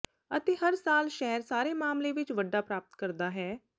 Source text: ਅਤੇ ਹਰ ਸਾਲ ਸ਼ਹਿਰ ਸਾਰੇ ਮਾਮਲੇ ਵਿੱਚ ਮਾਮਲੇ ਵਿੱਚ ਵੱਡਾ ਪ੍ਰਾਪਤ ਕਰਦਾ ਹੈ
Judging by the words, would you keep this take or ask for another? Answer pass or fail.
fail